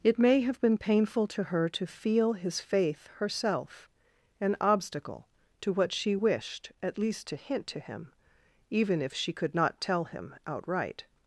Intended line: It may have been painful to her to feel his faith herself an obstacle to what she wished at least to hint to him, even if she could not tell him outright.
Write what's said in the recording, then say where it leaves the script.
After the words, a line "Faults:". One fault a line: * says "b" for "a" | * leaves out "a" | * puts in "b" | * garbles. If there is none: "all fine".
It may have been painful to her to feel his faith herself an obstacle to what she wished at least to hint to him, even if she could not tell him outright.
Faults:
all fine